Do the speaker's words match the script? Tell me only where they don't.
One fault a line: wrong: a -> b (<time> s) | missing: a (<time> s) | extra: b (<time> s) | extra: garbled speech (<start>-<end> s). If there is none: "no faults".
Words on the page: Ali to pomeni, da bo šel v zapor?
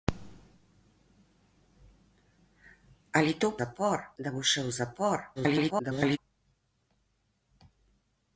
wrong: pomeni -> zapor (3.6 s)
extra: garbled speech (5.4-6.2 s)